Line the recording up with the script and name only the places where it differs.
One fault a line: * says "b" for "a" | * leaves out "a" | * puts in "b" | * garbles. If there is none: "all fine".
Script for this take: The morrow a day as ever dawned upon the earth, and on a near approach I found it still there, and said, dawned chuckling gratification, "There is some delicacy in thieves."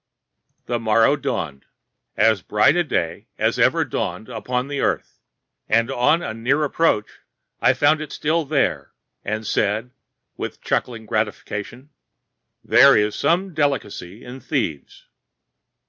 * puts in "dawned as bright"
* says "with" for "dawned"